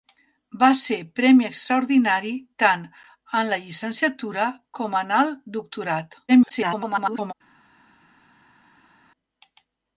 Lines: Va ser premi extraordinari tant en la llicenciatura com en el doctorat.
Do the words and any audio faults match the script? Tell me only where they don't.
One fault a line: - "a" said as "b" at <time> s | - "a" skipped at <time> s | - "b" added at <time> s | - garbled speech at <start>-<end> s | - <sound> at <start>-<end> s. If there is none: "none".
- garbled speech at 6.3-7.3 s